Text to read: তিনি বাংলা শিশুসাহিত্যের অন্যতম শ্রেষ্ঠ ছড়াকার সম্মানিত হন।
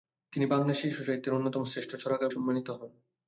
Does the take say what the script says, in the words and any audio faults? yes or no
yes